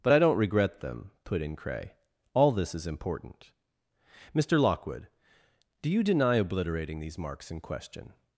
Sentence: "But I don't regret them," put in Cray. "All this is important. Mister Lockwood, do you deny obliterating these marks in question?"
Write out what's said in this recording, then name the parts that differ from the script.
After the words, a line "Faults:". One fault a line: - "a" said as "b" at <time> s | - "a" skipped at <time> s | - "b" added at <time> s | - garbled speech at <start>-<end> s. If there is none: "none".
"But I don't regret them," put in Cray. "All this is important. Mister Lockwood, do you deny obliterating these marks in question?"
Faults:
none